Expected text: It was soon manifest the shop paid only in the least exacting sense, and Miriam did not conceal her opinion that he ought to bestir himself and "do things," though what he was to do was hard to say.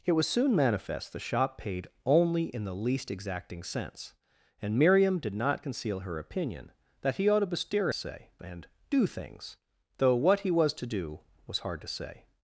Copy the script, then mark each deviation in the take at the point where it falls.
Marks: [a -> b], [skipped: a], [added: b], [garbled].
It was soon manifest the shop paid only in the least exacting sense, and Miriam did not conceal her opinion that he ought to bestir [himself -> say] and "do things," though what he was to do was hard to say.